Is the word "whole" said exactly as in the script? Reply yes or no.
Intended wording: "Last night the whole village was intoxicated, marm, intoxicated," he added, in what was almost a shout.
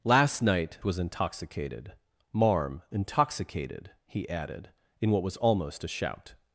no